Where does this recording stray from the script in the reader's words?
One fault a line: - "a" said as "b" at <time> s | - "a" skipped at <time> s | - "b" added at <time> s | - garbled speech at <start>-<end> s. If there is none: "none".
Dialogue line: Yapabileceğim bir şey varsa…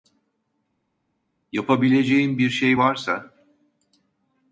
none